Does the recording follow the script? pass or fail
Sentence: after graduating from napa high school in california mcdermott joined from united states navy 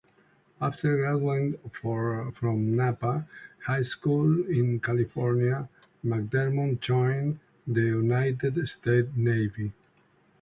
fail